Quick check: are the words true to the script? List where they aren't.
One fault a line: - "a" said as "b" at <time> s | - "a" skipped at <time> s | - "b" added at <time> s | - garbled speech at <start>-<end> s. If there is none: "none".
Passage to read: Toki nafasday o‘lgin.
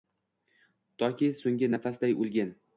- "so‘nggi" added at 1.4 s